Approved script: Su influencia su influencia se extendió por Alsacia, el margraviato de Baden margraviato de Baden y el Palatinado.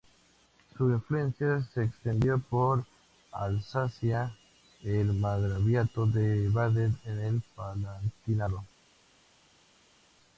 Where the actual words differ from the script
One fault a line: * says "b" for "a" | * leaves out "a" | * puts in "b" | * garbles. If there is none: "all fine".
* leaves out "su influencia"
* leaves out "margraviato de Baden"